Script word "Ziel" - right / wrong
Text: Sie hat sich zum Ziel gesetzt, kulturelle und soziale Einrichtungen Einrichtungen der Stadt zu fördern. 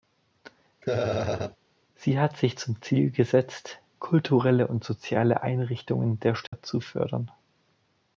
right